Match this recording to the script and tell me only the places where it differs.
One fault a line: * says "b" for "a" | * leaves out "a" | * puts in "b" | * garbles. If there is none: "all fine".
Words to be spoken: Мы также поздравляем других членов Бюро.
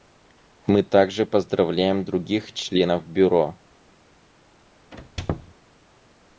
all fine